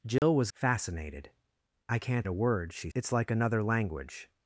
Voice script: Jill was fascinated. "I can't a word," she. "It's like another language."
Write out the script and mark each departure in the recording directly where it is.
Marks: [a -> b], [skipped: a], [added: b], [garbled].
Jill was fascinated. "I can't a word," she. "It's like another language."